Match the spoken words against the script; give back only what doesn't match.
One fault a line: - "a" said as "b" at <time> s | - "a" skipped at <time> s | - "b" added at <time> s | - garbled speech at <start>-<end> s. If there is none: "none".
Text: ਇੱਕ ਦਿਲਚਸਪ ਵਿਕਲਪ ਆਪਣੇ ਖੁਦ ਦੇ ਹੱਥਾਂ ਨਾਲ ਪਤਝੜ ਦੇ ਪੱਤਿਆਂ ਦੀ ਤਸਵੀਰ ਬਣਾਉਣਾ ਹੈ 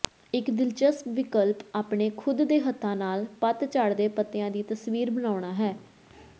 none